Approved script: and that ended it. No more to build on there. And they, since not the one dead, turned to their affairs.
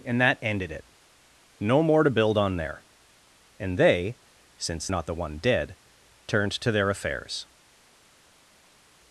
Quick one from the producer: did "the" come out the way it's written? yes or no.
yes